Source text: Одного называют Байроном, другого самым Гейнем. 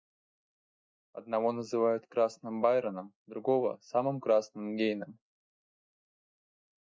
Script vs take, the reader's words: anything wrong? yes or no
yes